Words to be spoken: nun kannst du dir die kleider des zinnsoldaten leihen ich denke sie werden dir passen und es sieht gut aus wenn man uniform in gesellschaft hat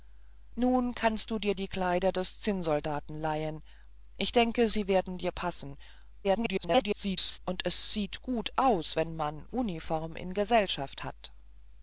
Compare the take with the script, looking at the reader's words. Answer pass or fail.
fail